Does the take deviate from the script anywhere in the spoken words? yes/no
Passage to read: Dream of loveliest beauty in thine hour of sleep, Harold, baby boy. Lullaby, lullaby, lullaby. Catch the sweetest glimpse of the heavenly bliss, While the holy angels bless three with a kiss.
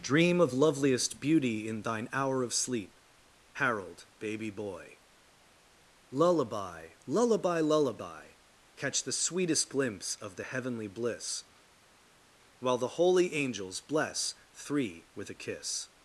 no